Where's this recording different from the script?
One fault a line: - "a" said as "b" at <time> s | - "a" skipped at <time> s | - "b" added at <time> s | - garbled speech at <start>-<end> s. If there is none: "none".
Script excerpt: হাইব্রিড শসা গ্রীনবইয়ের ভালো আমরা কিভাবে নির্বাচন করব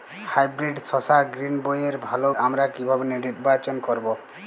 none